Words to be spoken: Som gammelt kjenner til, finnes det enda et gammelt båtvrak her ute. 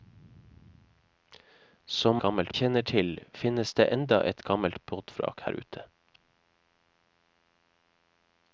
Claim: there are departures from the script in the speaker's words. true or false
false